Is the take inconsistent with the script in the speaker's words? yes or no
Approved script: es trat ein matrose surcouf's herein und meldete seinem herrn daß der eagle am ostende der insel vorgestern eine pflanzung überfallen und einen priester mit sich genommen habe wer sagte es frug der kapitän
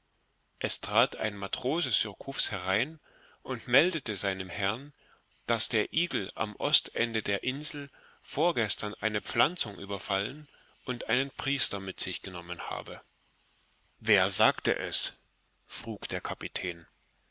no